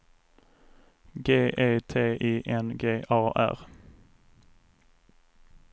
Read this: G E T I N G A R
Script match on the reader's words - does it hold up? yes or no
yes